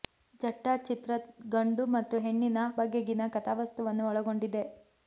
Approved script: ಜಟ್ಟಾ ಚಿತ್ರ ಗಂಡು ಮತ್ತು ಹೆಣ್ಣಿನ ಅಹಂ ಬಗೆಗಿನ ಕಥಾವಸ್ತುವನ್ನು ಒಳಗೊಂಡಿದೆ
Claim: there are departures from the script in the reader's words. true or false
true